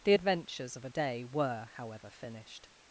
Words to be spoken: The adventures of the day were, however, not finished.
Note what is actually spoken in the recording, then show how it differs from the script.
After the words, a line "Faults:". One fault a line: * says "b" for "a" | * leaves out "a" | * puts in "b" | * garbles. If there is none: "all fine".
The adventures of a day were, however, finished.
Faults:
* says "a" for "the"
* leaves out "not"